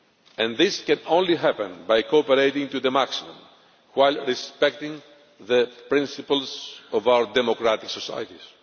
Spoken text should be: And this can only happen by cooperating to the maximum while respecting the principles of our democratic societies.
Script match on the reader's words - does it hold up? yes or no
yes